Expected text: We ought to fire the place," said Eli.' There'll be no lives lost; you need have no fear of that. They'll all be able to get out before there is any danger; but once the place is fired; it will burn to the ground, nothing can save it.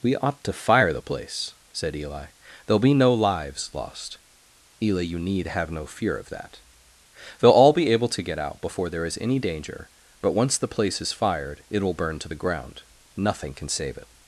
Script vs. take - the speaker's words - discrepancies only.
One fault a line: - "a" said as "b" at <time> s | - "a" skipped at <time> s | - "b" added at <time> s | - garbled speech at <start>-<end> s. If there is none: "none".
- "eli" added at 4.8 s